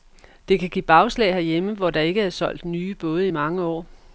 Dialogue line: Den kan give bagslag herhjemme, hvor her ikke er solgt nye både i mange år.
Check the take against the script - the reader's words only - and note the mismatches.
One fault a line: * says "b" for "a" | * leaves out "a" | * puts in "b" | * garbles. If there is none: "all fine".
* says "Det" for "Den"
* says "der" for "her"